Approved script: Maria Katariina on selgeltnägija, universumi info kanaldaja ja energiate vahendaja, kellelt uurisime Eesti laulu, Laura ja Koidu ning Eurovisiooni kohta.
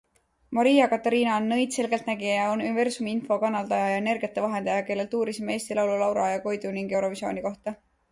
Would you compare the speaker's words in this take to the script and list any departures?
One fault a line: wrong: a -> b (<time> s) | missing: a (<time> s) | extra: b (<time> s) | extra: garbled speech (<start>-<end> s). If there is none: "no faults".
extra: nõid (1.5 s)